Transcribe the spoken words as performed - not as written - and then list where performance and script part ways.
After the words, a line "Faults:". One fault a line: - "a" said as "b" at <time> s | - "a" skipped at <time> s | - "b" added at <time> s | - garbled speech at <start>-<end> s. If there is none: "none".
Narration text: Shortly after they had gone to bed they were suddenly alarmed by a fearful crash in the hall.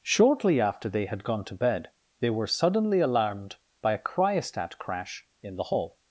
Shortly after they had gone to bed they were suddenly alarmed by a cryostat crash in the hall.
Faults:
- "fearful" said as "cryostat" at 4.0 s